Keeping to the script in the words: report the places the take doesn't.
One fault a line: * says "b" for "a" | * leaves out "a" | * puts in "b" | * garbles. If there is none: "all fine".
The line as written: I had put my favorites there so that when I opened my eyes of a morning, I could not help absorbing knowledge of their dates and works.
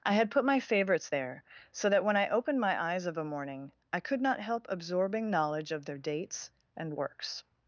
all fine